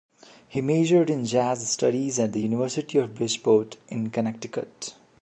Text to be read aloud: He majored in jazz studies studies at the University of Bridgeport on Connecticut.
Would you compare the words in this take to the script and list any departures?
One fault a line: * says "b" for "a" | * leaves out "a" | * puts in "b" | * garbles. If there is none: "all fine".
* leaves out "studies"
* says "in" for "on"